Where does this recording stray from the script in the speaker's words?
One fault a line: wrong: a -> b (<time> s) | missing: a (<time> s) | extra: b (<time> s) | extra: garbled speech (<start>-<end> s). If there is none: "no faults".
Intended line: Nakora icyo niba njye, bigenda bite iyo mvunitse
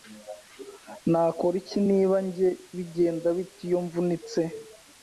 wrong: icyo -> iki (1.6 s)